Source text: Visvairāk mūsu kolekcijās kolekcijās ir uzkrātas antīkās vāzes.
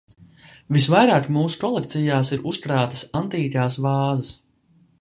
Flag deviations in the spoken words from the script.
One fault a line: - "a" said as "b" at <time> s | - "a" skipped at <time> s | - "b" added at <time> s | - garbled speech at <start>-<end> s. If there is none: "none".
- "kolekcijās" skipped at 2.3 s